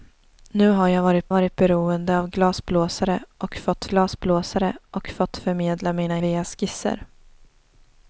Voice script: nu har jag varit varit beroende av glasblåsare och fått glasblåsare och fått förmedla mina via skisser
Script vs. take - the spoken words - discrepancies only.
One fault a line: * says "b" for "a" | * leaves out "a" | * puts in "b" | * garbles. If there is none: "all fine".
all fine